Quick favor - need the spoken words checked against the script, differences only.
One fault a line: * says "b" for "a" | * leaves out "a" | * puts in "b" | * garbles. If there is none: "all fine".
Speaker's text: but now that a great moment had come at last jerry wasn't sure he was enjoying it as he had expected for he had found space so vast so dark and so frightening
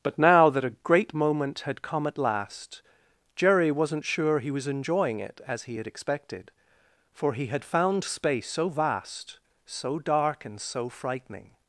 all fine